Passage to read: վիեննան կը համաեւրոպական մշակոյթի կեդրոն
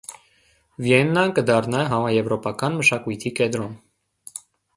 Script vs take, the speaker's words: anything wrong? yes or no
yes